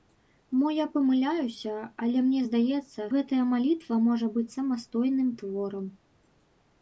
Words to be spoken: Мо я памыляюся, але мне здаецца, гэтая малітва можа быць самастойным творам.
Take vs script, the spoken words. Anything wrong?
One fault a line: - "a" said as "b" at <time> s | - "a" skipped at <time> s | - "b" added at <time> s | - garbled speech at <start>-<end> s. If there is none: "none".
none